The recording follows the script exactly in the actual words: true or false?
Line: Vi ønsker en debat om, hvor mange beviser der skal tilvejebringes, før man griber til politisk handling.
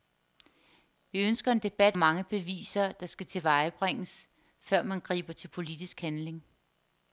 false